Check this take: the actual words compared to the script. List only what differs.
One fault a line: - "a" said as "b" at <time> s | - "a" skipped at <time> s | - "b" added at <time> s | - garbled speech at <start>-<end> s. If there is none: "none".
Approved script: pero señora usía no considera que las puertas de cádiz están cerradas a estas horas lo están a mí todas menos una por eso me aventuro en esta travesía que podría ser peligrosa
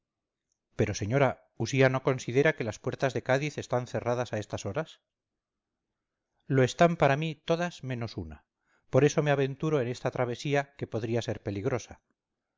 - "a" said as "para" at 7.0 s